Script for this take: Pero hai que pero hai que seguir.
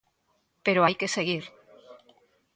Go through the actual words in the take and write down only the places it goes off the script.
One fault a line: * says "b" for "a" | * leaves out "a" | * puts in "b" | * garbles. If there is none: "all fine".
* leaves out "pero hai que"